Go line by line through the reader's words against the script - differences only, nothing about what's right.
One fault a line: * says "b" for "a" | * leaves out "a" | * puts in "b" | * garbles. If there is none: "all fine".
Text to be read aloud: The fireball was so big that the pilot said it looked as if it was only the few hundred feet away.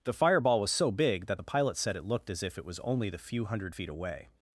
all fine